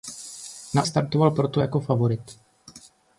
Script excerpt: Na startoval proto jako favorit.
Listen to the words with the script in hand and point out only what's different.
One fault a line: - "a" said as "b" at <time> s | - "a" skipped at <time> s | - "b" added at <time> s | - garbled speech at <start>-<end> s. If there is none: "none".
none